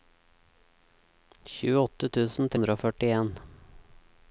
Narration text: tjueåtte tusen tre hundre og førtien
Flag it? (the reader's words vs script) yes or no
yes